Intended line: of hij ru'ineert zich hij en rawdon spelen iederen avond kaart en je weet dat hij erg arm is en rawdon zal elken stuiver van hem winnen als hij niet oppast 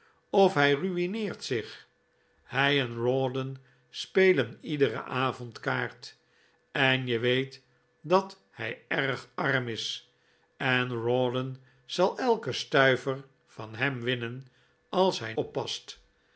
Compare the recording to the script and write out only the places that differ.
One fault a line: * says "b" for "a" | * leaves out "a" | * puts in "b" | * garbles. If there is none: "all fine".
* leaves out "niet"